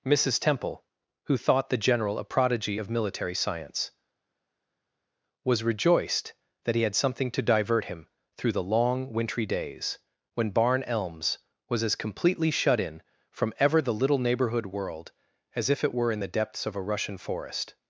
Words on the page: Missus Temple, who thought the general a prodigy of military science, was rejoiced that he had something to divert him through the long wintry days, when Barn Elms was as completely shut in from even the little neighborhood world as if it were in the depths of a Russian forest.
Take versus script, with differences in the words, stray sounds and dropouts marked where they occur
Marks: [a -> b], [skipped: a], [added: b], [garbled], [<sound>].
Missus Temple, who thought the general a prodigy of military science, was rejoiced that he had something to divert him through the long wintry days, when Barn Elms was as completely shut in from [even -> ever] the little neighborhood world as if it were in the depths of a Russian forest.